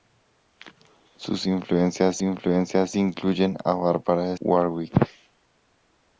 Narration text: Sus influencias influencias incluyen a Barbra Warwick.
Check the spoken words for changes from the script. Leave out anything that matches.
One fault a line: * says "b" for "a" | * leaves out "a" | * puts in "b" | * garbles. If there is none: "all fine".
all fine